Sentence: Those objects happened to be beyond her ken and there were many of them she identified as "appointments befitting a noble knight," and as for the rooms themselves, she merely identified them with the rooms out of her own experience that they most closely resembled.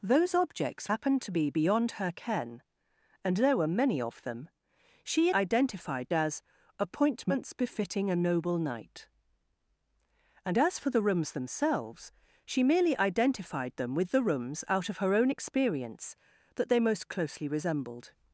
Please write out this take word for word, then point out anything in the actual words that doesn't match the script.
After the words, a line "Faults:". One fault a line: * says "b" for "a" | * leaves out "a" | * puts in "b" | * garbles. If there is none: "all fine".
Those objects happened to be beyond her ken and there were many of them she identified as "appointments befitting a noble knight," and as for the rooms themselves, she merely identified them with the rooms out of her own experience that they most closely resembled.
Faults:
all fine